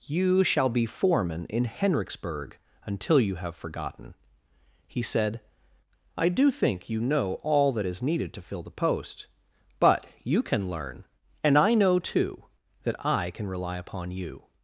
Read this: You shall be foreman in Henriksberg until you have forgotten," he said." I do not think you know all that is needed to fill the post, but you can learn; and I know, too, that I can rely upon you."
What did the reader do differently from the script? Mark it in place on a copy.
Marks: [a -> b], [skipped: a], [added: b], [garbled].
You shall be foreman in Henriksberg until you have forgotten," he said." I do [skipped: not] think you know all that is needed to fill the post, but you can learn; and I know, too, that I can rely upon you."